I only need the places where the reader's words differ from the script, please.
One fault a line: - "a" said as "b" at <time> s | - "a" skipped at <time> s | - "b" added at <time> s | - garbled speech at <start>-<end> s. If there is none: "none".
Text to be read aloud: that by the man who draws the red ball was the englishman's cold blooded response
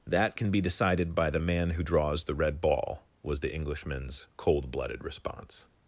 - "can be decided" added at 0.3 s